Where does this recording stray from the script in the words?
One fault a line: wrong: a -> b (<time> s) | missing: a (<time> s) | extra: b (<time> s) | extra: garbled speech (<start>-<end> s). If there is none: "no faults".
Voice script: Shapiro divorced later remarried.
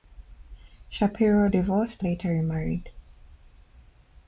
no faults